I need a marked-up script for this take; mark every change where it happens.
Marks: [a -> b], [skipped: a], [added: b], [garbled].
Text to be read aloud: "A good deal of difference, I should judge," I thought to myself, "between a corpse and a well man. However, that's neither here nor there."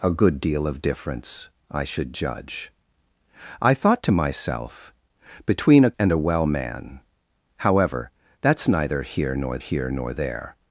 "A good deal of difference, I should judge," I thought to myself, "between a [skipped: corpse] and a well man. However, that's neither here nor [added: here nor] there."